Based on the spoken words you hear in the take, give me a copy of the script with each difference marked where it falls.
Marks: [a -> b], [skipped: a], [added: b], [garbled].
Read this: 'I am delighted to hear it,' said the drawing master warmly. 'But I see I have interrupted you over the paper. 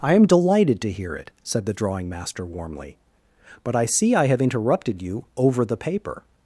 'I am delighted to hear it,' said the drawing master warmly. 'But I see I have interrupted you over the paper.